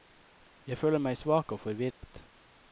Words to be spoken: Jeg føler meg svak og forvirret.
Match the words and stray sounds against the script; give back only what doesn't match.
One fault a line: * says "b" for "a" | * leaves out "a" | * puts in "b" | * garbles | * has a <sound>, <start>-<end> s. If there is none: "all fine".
* has a dropout, 1.9-2.0 s